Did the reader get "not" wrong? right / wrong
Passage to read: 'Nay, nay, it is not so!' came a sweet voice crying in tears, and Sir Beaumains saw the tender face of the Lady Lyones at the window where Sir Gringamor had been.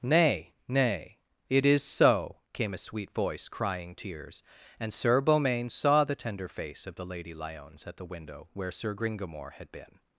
wrong